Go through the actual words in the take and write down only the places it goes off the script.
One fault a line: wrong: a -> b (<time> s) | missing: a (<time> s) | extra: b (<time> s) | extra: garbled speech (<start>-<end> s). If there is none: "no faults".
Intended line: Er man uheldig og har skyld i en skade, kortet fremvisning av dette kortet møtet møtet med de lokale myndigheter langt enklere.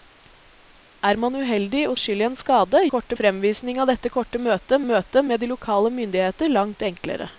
no faults